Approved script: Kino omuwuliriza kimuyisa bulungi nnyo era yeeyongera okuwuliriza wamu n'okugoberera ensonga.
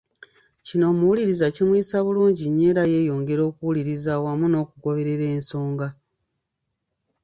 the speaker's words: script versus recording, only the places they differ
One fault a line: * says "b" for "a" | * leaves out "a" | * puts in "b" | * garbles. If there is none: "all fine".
all fine